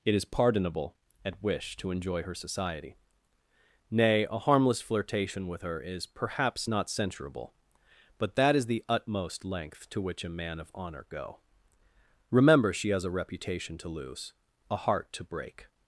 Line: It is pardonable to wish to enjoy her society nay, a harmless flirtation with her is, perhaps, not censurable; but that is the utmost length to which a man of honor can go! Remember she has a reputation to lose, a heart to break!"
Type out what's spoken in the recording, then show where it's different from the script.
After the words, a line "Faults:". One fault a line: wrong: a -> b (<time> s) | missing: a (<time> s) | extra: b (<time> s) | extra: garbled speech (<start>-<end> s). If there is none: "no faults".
It is pardonable at wish to enjoy her society nay, a harmless flirtation with her is, perhaps, not censurable; but that is the utmost length to which a man of honor go! Remember she has a reputation to lose, a heart to break!"
Faults:
wrong: to -> at (1.2 s)
missing: can (11.1 s)